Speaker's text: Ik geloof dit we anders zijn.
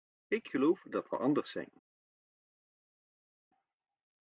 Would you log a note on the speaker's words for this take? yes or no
yes